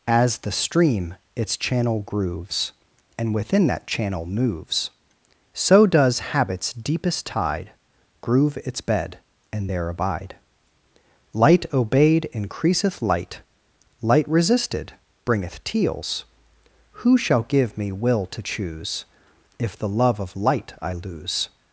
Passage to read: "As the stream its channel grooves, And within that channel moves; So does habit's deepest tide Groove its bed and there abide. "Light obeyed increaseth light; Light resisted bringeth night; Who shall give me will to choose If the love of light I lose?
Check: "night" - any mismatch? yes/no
yes